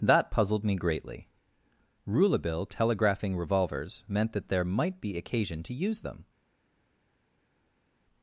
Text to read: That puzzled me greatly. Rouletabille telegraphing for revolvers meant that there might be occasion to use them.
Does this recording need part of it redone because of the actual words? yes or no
yes